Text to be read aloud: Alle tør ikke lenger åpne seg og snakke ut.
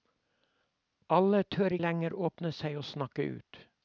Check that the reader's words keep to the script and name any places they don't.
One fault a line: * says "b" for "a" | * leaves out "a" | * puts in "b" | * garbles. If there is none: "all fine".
* leaves out "ikke"